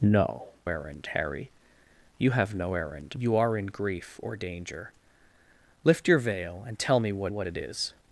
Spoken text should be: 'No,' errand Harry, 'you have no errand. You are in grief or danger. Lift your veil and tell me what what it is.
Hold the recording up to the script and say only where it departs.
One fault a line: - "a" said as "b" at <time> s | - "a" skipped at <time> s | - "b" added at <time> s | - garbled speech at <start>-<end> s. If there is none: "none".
none